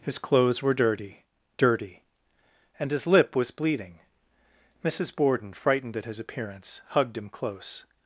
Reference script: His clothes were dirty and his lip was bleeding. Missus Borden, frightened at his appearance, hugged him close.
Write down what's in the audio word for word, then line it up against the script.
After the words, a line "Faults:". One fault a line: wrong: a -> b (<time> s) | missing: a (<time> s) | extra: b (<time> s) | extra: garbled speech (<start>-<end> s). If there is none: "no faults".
His clothes were dirty dirty and his lip was bleeding. Missus Borden, frightened at his appearance, hugged him close.
Faults:
extra: dirty (1.6 s)